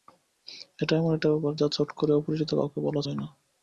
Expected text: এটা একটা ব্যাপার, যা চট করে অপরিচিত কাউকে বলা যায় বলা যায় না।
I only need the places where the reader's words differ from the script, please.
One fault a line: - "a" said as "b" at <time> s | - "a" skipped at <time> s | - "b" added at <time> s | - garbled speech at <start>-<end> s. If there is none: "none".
- "এমন" added at 1.0 s
- "বলা যায়" skipped at 3.2 s